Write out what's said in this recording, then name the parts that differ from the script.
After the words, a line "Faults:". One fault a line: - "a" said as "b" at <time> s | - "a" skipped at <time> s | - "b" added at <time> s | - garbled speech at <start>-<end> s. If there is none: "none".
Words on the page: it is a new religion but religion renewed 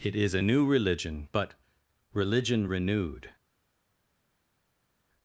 it is a new religion but religion renewed
Faults:
none